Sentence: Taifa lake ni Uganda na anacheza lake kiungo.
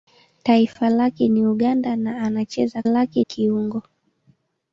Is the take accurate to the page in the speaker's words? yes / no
yes